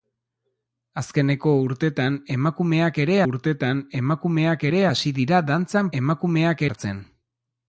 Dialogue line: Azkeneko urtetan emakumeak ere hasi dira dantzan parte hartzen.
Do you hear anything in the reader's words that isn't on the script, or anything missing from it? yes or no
yes